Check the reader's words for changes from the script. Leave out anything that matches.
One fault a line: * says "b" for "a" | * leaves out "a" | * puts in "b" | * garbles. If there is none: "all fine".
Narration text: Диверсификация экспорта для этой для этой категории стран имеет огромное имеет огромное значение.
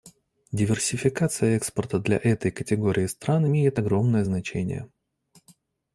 * leaves out "для этой"
* leaves out "имеет огромное"